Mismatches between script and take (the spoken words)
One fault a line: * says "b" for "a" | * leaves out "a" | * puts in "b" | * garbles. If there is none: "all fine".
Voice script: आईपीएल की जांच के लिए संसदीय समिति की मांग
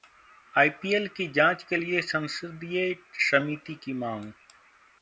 all fine